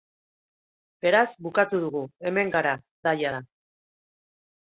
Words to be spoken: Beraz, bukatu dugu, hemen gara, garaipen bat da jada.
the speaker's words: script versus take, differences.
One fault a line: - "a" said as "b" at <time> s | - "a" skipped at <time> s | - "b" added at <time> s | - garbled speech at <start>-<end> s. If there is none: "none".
- "garaipen bat" skipped at 2.7 s